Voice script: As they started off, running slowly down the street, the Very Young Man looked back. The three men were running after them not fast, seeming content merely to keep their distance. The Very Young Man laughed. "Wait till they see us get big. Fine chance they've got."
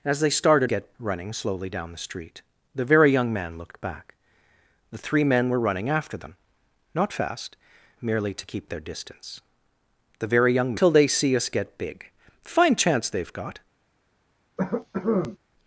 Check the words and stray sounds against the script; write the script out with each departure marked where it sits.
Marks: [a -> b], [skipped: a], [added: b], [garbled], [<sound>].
As they started [off, -> get] running slowly down the street, the Very Young Man looked back. The three men were running after them not fast, [skipped: seeming content] merely to keep their distance. The Very Young [skipped: Man laughed. "Wait] till they see us get big. Fine chance they've got." [cough]